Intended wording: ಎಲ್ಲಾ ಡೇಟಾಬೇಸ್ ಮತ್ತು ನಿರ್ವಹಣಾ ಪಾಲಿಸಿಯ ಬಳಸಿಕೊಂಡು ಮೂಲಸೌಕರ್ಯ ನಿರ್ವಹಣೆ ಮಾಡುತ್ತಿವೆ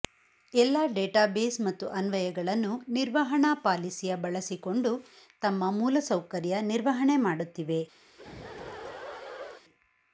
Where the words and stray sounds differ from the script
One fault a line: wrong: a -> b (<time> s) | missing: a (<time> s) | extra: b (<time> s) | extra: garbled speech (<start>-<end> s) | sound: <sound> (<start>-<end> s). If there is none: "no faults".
extra: ಅನ್ವಯಗಳನ್ನು (1.9 s)
extra: ತಮ್ಮ (5.4 s)
sound: laugh (8.1-9.6 s)